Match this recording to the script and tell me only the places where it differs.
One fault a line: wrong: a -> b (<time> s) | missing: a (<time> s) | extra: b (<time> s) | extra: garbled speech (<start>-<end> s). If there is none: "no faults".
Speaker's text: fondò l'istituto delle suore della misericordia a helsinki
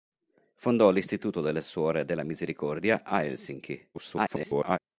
extra: garbled speech (3.9-4.8 s)